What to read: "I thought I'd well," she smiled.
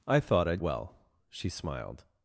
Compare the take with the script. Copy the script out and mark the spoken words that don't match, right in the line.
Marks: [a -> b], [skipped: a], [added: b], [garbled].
"I thought I'd well," she smiled.